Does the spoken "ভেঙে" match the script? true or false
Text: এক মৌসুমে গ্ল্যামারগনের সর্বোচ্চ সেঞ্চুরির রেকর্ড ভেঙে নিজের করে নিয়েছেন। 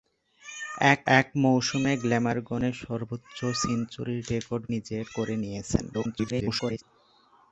false